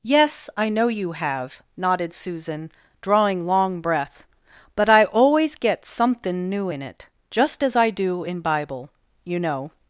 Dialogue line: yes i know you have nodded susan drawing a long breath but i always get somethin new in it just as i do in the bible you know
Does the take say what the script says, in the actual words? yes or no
no